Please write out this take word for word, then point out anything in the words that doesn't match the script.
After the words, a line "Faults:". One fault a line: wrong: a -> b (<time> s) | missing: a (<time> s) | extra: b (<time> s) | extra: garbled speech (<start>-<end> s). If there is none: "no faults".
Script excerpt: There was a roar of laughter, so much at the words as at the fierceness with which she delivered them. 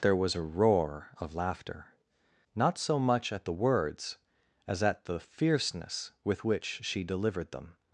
There was a roar of laughter, not so much at the words as at the fierceness with which she delivered them.
Faults:
extra: not (2.5 s)